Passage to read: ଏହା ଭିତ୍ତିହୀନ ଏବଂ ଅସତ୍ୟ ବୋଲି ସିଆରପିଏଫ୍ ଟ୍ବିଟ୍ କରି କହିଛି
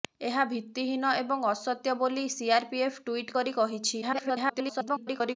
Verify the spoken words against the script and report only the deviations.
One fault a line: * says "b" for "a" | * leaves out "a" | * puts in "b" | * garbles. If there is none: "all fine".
* garbles